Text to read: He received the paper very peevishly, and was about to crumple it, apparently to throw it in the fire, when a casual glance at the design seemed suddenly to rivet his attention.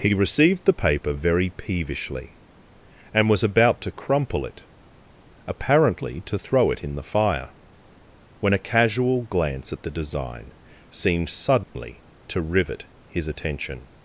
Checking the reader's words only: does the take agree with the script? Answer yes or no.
yes